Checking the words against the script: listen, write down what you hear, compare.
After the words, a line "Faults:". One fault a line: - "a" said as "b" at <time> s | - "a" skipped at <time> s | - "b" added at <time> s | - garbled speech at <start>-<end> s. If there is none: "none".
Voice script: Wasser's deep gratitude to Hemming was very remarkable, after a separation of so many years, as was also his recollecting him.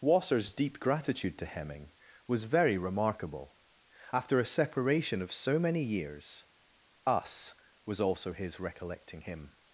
Wasser's deep gratitude to Hemming was very remarkable, after a separation of so many years, us was also his recollecting him.
Faults:
- "as" said as "us" at 7.1 s